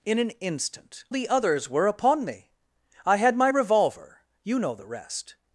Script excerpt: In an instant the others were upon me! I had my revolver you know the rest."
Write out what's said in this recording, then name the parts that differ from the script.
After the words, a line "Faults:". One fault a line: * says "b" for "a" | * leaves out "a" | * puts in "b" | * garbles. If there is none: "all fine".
In an instant the others were upon me! I had my revolver you know the rest."
Faults:
all fine